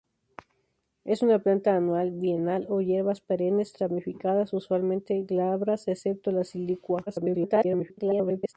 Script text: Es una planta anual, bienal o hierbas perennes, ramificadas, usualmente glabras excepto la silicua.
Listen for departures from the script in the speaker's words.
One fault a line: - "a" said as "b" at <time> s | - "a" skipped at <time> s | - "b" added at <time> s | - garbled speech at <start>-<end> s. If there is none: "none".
- garbled speech at 7.1-8.5 s